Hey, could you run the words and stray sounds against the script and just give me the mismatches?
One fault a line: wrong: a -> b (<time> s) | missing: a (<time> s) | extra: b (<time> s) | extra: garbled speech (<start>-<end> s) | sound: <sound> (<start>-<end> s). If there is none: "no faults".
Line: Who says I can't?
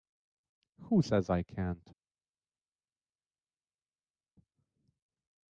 no faults